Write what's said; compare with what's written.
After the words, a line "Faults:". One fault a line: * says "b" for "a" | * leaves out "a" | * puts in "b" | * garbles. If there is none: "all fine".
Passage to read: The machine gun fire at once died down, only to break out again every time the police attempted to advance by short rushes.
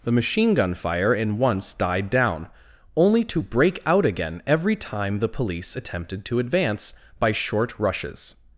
The machine gun fire in once died down, only to break out again every time the police attempted to advance by short rushes.
Faults:
* says "in" for "at"